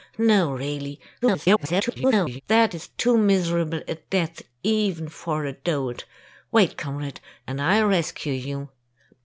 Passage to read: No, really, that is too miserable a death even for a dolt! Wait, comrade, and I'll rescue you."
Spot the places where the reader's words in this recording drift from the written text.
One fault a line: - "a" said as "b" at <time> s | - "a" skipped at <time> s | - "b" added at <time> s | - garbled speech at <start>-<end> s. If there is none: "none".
- garbled speech at 1.2-2.4 s